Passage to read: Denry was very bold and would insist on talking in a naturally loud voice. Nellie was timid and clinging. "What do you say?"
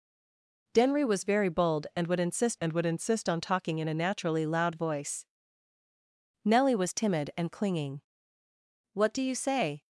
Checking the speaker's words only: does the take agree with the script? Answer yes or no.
no